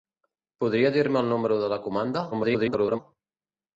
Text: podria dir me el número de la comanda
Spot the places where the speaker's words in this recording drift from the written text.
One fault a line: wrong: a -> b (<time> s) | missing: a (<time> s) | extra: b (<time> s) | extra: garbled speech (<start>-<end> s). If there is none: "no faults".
extra: garbled speech (2.3-3.0 s)